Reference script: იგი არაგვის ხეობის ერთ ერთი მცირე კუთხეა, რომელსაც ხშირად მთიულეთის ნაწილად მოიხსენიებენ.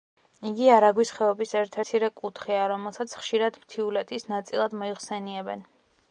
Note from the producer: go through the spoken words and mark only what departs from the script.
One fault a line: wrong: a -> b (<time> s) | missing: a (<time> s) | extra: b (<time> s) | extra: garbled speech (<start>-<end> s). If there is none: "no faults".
missing: ერთი (1.8 s)